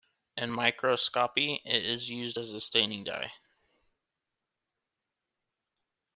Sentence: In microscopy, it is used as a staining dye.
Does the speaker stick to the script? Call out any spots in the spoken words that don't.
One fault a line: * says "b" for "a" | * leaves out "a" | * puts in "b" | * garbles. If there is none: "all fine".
all fine